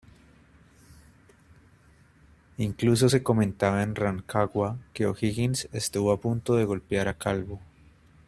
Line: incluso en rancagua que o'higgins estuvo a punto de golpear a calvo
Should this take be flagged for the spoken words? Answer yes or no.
yes